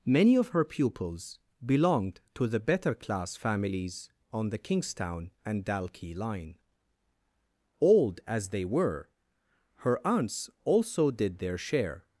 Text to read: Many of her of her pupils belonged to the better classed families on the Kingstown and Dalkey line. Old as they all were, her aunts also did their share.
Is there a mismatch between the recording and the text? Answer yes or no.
yes